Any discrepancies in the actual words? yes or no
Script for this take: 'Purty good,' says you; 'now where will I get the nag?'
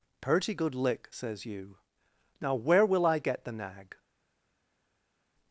yes